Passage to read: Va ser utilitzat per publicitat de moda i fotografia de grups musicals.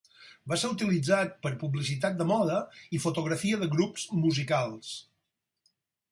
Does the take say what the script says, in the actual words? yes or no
yes